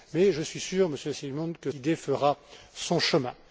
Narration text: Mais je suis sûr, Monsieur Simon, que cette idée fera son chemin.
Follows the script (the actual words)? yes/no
no